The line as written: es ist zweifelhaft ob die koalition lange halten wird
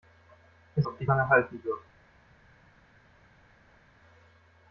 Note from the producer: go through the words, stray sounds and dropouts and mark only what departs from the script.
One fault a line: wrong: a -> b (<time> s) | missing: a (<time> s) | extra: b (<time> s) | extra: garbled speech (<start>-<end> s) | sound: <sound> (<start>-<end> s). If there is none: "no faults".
missing: ist zweifelhaft (0.9 s)
missing: koalition (1.1 s)